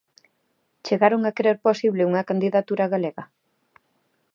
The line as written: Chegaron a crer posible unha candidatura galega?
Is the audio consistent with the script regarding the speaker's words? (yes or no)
yes